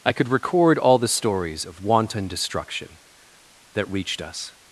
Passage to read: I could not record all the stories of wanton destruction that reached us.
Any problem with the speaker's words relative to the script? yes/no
yes